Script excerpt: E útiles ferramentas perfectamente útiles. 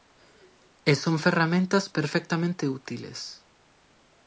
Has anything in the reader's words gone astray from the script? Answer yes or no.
yes